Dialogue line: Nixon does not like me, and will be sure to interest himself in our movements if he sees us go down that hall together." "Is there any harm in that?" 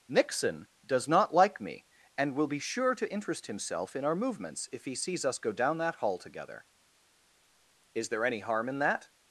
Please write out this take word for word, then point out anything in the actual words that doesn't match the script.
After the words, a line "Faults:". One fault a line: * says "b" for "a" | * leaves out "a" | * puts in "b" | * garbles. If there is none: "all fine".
Nixon does not like me, and will be sure to interest himself in our movements if he sees us go down that hall together." "Is there any harm in that?"
Faults:
all fine